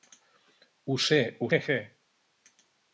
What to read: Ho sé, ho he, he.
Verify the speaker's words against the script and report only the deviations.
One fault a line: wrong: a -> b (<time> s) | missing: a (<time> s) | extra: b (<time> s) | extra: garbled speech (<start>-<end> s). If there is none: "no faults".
no faults